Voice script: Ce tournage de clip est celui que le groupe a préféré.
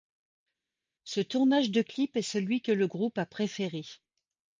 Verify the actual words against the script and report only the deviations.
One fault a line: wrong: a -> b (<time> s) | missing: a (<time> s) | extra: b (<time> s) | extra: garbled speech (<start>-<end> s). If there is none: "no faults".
no faults